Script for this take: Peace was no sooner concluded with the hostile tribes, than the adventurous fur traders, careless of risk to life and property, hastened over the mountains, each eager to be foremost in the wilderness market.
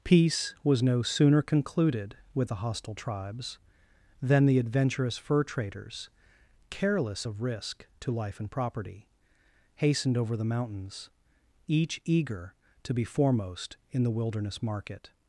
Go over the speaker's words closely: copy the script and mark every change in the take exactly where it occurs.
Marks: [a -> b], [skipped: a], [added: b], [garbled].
Peace was no sooner concluded with the hostile tribes, than the adventurous fur traders, careless of risk to life and property, hastened over the mountains, each eager to be foremost in the wilderness market.